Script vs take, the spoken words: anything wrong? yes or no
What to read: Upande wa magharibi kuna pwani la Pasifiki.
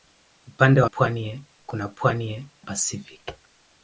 yes